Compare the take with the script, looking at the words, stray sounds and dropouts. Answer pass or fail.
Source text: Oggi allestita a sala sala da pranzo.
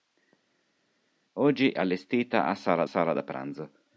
pass